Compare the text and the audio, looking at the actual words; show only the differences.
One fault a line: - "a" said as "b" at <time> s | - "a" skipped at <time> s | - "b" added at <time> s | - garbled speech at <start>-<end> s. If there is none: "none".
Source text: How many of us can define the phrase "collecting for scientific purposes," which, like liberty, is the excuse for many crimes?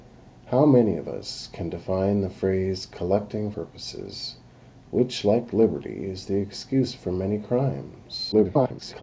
- "for scientific" skipped at 3.5 s
- garbled speech at 8.3-9.0 s